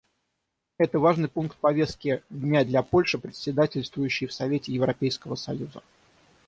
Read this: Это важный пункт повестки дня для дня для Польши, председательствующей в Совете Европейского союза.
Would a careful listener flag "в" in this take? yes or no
no